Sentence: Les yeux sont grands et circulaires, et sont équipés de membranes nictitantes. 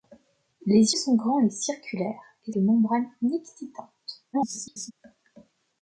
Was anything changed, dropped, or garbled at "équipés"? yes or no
yes